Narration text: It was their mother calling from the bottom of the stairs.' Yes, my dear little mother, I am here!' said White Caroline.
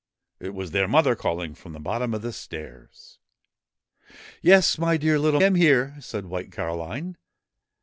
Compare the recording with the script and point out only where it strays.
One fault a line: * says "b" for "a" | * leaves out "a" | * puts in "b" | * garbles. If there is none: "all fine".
* leaves out "mother I"